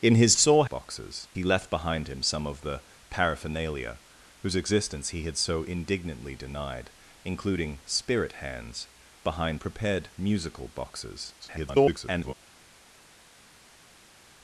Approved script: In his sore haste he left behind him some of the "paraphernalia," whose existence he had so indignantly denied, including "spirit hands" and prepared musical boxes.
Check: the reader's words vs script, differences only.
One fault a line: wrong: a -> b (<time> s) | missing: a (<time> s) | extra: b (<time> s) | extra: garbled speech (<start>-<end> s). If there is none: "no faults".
wrong: haste -> boxes (0.6 s)
wrong: and -> behind (9.3 s)
extra: garbled speech (11.4-12.3 s)